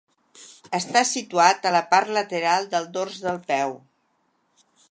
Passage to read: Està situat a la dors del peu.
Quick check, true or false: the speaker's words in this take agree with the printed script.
false